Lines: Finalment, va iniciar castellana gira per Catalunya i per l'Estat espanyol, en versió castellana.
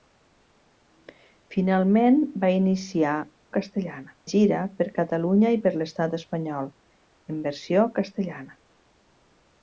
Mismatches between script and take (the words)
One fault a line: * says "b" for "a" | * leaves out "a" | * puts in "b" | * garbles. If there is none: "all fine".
all fine